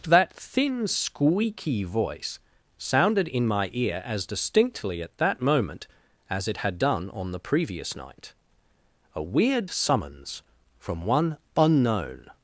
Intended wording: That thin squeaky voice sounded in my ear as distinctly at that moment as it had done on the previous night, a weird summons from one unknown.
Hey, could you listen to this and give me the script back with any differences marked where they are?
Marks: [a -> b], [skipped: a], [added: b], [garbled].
That thin squeaky voice sounded in my ear as distinctly at that moment as it had done on the previous night, a weird summons from one unknown.